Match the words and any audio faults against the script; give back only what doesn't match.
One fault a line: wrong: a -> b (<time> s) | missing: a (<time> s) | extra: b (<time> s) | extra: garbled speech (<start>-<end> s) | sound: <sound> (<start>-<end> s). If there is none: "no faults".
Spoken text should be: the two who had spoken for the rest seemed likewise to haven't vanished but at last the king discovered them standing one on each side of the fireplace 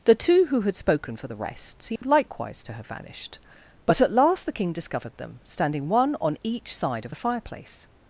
sound: dropout (2.0-2.0 s)
wrong: haven't -> have (2.7 s)